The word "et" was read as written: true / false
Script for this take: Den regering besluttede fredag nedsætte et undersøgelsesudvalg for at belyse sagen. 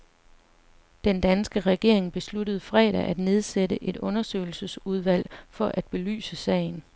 true